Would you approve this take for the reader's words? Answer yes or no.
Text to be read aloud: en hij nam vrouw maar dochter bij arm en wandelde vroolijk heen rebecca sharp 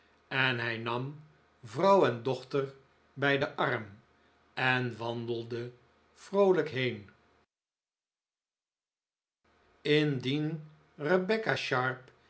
no